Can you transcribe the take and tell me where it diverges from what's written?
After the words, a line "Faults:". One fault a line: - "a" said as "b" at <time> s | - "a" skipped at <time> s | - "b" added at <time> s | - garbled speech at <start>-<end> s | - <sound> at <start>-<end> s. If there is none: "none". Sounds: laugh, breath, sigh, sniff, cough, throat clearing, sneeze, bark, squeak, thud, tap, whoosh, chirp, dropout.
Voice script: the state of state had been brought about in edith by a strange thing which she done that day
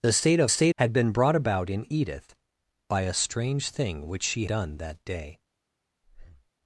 the state of state had been brought about in edith by a strange thing which she done that day
Faults:
- breath at 6.0-6.5 s